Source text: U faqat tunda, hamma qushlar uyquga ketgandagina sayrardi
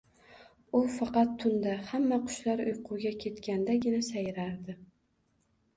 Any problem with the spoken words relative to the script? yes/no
no